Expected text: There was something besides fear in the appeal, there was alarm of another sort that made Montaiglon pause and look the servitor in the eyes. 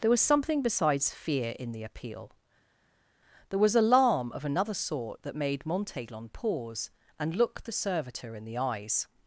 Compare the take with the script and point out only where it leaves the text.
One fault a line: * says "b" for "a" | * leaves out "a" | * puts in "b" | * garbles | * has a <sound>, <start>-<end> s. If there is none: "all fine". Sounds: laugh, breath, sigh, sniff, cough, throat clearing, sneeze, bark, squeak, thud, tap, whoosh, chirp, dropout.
all fine